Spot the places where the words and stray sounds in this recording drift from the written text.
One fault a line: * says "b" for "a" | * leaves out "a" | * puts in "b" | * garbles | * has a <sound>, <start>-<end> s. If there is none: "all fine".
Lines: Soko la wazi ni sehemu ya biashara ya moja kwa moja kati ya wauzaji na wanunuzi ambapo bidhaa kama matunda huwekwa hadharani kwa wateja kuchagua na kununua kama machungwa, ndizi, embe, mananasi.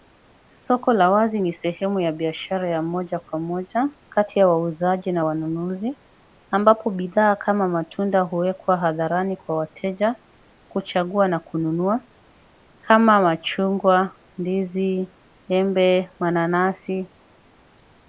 all fine